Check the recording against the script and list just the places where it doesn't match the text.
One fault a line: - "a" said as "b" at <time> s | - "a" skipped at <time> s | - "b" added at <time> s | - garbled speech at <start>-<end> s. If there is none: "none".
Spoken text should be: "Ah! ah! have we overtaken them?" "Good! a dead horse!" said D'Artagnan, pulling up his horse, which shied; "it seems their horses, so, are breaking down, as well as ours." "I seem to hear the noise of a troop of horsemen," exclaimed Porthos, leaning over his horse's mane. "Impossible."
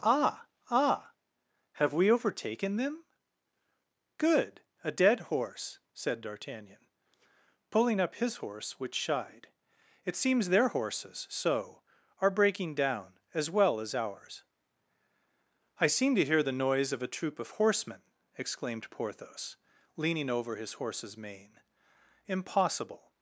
none